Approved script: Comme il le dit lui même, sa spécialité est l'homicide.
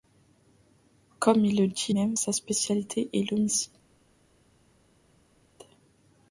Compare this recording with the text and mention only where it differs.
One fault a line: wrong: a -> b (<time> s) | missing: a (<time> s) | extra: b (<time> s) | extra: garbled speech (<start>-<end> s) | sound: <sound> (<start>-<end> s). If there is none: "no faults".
missing: lui (1.9 s)